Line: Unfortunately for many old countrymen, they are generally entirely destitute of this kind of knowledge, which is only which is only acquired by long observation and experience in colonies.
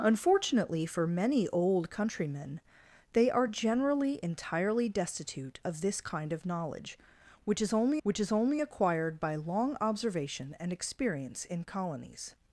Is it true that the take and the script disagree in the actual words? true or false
false